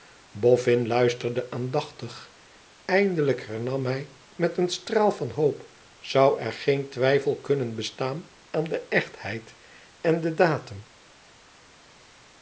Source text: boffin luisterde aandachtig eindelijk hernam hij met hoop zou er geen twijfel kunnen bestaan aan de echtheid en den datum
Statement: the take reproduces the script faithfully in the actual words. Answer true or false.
false